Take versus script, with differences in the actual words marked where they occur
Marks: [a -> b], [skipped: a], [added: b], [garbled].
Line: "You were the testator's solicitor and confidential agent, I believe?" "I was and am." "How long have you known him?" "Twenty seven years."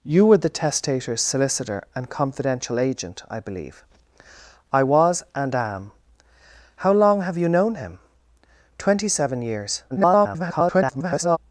"You were the testator's solicitor and confidential agent, I believe?" "I was and am." "How long have you known him?" "Twenty seven years." [garbled]